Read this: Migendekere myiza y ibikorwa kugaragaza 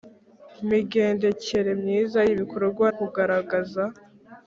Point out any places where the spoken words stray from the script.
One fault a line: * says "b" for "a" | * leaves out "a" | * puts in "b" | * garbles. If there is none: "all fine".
all fine